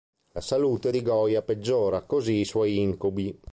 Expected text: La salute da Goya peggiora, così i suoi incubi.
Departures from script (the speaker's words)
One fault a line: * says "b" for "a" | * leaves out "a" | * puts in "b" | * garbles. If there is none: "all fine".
* says "di" for "da"